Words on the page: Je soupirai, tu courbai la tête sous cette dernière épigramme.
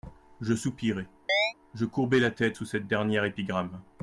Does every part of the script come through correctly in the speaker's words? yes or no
no